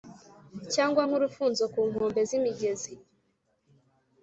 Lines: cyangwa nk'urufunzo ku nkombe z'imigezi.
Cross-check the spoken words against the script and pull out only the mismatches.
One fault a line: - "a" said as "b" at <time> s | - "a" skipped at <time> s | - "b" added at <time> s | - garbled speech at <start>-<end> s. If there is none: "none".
none